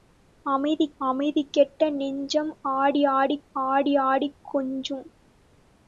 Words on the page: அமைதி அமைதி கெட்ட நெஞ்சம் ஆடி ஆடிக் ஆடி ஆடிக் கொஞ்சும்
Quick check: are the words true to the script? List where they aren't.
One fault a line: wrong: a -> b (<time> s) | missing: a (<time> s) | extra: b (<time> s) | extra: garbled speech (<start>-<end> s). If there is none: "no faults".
no faults